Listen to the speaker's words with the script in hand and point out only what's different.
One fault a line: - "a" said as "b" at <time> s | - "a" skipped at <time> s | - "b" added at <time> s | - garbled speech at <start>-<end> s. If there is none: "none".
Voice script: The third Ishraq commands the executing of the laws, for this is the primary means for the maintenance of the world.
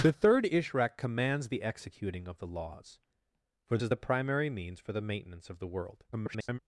- "this" skipped at 3.8 s
- garbled speech at 6.1-6.6 s